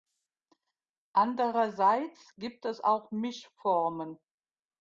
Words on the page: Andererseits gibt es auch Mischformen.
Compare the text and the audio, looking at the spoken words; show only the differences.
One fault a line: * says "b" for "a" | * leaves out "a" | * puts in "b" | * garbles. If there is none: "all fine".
all fine